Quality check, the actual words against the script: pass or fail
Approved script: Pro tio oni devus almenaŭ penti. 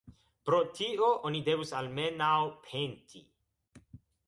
pass